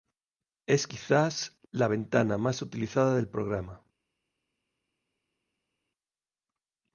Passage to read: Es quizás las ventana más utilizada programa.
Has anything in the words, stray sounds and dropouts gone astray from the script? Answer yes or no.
yes